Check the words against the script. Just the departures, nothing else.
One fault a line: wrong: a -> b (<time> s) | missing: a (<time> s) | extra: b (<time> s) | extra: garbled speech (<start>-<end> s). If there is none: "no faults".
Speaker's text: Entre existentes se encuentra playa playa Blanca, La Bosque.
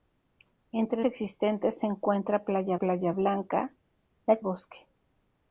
no faults